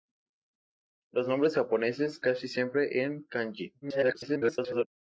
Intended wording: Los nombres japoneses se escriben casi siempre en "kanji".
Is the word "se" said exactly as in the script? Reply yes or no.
no